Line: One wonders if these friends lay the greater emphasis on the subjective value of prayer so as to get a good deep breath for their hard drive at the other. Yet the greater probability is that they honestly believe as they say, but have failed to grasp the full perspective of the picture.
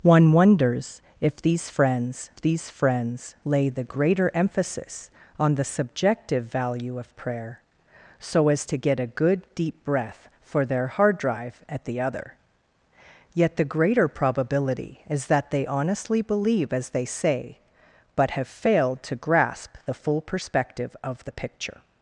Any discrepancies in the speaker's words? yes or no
yes